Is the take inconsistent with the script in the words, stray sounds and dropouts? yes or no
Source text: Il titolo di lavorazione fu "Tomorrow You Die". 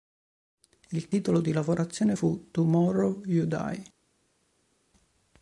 no